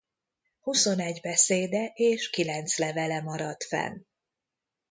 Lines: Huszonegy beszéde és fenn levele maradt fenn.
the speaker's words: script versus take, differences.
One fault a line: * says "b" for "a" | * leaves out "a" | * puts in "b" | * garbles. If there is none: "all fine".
* says "kilenc" for "fenn"